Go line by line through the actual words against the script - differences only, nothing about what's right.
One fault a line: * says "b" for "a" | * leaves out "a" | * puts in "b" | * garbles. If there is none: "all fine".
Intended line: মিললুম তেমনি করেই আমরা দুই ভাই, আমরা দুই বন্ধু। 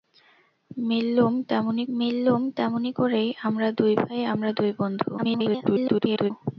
* puts in "মিললুম তেমনি"
* garbles